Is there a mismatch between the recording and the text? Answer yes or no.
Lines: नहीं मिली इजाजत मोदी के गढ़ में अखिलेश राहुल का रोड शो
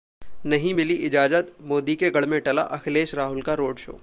yes